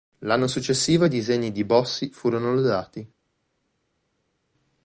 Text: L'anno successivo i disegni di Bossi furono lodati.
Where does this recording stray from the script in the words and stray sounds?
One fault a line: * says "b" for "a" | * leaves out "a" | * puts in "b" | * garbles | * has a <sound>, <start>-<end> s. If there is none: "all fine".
all fine